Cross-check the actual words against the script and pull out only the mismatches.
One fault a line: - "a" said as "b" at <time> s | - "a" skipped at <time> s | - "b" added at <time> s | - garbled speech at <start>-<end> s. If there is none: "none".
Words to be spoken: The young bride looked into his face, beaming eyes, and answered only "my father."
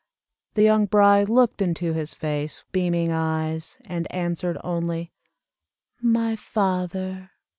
none